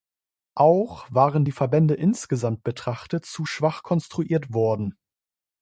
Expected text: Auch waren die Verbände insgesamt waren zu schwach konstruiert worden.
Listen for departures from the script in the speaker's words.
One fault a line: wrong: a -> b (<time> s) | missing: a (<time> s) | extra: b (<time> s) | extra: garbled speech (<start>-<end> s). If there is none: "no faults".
wrong: waren -> betrachtet (2.6 s)